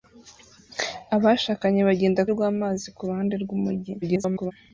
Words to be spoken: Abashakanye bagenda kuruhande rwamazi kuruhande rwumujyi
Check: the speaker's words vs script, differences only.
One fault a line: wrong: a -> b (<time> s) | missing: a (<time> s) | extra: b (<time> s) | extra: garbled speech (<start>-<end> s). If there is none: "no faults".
missing: kuruhande (2.2 s)
extra: garbled speech (4.0-4.5 s)